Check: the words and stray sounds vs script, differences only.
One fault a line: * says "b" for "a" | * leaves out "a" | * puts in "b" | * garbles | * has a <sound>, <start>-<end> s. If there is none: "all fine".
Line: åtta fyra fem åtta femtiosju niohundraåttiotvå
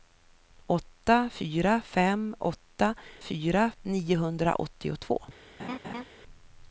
* says "fyra" for "femtiosju"
* has a laugh, 5.6-6.1 s